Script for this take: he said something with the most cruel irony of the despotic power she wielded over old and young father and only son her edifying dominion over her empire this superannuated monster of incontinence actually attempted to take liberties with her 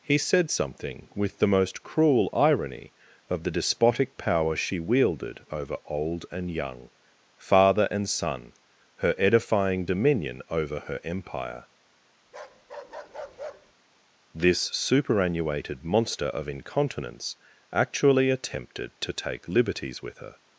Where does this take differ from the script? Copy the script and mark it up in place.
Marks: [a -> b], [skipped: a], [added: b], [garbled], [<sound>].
he said something with the most cruel irony of the despotic power she wielded over old and young father and [skipped: only] son her edifying dominion over her empire [bark] this superannuated monster of incontinence actually attempted to take liberties with her